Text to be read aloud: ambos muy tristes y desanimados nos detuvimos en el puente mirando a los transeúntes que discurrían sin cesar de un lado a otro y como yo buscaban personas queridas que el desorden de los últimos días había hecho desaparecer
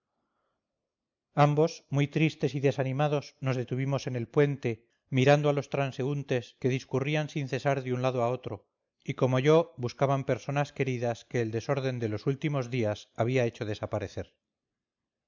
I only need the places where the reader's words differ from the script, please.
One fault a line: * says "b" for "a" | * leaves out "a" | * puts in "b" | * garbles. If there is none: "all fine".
all fine